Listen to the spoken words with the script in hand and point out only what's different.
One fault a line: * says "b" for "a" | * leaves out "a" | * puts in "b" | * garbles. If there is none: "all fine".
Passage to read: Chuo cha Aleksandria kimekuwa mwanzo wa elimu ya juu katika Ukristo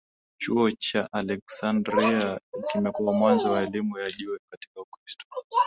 all fine